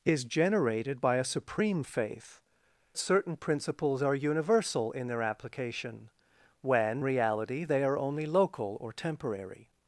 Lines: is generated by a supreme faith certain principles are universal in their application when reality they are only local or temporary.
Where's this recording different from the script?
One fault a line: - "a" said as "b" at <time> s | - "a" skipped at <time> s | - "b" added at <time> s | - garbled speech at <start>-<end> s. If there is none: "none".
none